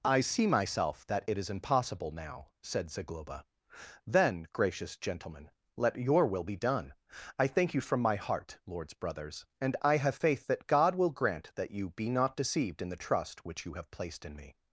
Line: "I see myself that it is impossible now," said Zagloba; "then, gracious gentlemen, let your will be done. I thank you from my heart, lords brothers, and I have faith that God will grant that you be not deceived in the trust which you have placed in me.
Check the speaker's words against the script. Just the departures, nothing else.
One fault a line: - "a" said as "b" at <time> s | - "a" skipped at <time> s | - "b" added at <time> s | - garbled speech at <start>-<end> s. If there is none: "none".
none